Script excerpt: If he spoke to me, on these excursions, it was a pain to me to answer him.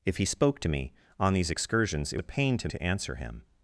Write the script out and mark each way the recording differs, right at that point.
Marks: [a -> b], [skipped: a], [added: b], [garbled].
If he spoke to me, on these excursions, it [skipped: was] a pain to [skipped: me] to answer him.